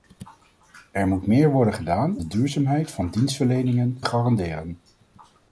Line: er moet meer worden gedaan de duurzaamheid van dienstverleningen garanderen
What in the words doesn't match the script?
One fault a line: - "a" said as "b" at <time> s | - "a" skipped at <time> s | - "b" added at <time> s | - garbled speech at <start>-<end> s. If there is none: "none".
none